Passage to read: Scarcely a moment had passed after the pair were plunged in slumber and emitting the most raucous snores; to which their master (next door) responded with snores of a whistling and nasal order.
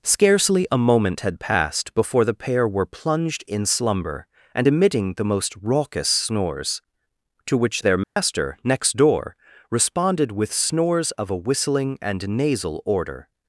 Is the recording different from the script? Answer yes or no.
yes